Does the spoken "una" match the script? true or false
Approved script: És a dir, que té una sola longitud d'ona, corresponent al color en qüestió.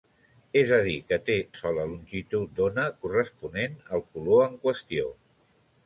false